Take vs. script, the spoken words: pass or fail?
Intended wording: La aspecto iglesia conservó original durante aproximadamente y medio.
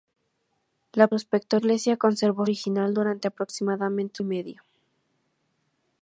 pass